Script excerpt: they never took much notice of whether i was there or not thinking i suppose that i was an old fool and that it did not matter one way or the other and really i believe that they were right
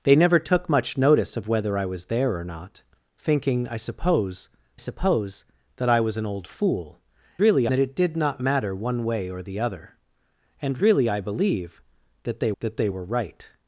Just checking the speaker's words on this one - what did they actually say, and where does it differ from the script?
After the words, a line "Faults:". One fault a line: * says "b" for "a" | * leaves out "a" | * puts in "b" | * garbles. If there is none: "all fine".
they never took much notice of whether i was there or not thinking i suppose suppose that i was an old fool really that it did not matter one way or the other and really i believe that they that they were right
Faults:
* puts in "suppose"
* says "really" for "and"
* puts in "that they"